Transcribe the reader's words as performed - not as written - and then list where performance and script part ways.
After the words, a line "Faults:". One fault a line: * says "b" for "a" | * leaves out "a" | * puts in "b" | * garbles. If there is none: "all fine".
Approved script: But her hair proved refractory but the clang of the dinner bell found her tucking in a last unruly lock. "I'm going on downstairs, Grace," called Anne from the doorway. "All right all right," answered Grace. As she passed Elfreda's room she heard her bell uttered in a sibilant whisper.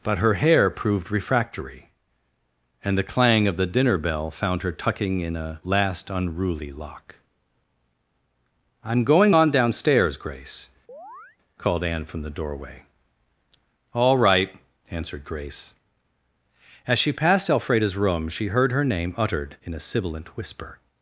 But her hair proved refractory and the clang of the dinner bell found her tucking in a last unruly lock. "I'm going on downstairs, Grace," called Anne from the doorway. "All right," answered Grace. As she passed Elfreda's room she heard her name uttered in a sibilant whisper.
Faults:
* says "and" for "but"
* leaves out "all right"
* says "name" for "bell"